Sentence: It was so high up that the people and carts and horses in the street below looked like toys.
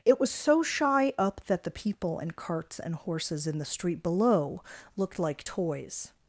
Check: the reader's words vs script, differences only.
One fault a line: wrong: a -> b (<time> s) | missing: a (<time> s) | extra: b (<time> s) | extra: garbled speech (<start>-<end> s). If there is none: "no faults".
wrong: high -> shy (0.6 s)